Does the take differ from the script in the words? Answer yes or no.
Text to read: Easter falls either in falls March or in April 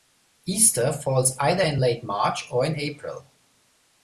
yes